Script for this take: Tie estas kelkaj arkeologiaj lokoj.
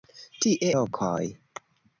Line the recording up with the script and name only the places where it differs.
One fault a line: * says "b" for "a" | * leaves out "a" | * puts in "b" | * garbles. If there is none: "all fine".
* leaves out "estas kelkaj arkeologiaj"